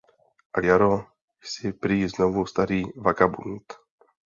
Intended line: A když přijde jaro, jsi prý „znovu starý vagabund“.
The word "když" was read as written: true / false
false